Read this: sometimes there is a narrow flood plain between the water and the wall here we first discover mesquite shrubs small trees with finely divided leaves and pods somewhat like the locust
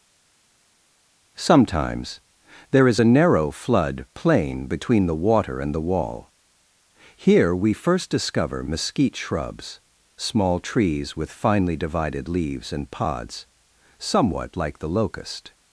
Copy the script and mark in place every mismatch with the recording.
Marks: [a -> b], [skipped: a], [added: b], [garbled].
sometimes there is a narrow flood plain between the water and the wall here we first discover mesquite shrubs small trees with finely divided leaves and pods somewhat like the locust